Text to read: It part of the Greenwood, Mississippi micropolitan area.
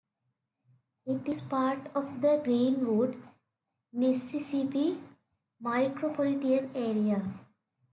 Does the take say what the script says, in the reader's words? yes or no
no